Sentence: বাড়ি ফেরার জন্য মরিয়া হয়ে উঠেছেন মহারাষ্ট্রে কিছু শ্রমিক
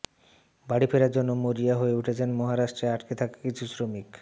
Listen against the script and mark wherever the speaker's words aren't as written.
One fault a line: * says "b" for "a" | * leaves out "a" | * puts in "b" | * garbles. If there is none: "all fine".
* puts in "আটকে থাকা"